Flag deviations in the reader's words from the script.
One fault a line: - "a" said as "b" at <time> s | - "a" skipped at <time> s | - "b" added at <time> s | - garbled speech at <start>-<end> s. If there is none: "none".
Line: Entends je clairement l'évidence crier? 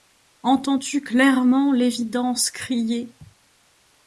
- "je" said as "tu" at 0.8 s